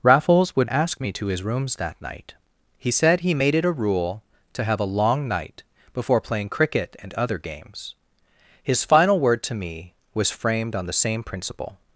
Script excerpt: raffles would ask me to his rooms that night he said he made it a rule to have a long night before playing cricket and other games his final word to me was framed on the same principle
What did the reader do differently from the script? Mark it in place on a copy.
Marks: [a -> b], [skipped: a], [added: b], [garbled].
raffles would ask me to his rooms that night he said he made it a rule to have a long night before playing cricket and other games his final word to me was framed on the same principle